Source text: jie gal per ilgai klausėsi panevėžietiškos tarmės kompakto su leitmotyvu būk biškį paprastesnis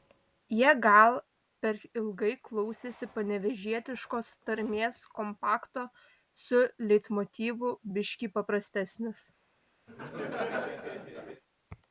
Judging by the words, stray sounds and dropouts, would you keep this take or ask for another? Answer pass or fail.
fail